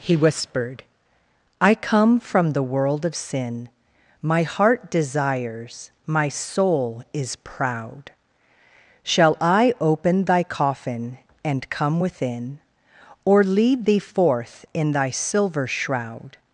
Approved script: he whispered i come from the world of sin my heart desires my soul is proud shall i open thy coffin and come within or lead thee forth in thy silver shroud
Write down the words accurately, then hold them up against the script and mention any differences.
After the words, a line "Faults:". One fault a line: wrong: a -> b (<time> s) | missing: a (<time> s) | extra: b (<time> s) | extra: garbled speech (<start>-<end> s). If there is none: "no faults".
he whispered i come from the world of sin my heart desires my soul is proud shall i open thy coffin and come within or lead thee forth in thy silver shroud
Faults:
no faults